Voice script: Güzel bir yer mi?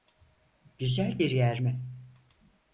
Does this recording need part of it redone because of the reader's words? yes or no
no